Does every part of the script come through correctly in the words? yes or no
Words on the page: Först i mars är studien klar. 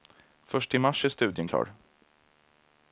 yes